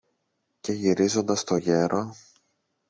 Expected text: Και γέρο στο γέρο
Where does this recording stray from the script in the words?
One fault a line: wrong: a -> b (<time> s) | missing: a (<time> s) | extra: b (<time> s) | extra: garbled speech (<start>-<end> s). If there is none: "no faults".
wrong: γέρο -> γυρίζοντας (0.7 s)